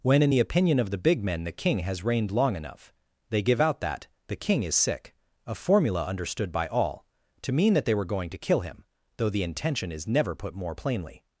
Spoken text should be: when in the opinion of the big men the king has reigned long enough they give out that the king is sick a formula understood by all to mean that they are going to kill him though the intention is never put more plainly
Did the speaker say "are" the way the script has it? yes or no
no